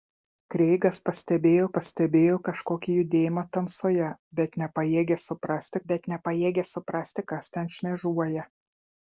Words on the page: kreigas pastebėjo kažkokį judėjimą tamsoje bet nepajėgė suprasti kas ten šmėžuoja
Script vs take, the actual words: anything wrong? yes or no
yes